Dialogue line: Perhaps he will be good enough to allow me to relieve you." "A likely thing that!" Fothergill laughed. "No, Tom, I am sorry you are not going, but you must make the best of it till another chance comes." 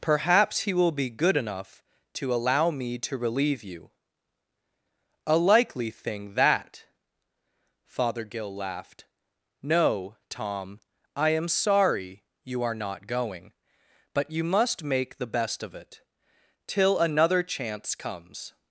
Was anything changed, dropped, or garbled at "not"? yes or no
no